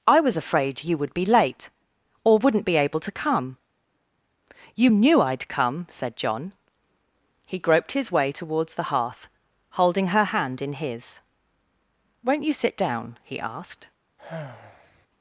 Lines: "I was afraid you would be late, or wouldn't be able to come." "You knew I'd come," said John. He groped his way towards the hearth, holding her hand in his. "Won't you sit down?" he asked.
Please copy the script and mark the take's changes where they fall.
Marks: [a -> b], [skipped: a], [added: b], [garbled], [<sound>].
"I was afraid you would be late, or wouldn't be able to come." "You knew I'd come," said John. He groped his way towards the hearth, holding her hand in his. "Won't you sit down?" he asked. [sigh]